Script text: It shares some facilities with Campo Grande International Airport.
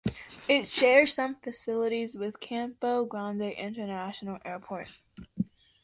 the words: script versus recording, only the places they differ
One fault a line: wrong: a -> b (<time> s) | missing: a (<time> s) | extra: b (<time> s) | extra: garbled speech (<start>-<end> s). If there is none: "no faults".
no faults